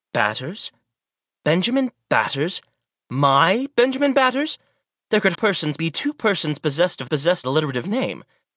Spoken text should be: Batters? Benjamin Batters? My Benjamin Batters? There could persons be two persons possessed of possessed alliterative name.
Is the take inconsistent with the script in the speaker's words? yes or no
no